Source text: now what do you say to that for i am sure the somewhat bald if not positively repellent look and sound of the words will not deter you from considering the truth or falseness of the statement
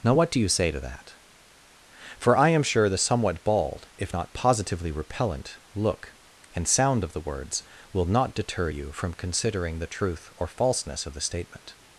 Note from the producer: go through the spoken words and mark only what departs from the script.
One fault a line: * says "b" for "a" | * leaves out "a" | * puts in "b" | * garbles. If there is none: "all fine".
all fine